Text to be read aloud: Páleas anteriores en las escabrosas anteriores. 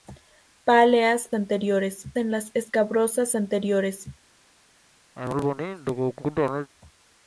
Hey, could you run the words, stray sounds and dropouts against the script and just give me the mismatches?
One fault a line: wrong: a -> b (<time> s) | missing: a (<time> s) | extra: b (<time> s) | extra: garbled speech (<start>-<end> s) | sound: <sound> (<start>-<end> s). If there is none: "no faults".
sound: cough (5.1-6.7 s)